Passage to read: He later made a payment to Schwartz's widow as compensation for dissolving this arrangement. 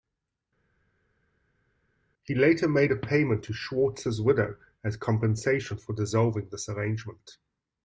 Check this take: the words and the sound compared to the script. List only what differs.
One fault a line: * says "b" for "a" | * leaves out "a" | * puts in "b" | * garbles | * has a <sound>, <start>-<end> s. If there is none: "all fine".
all fine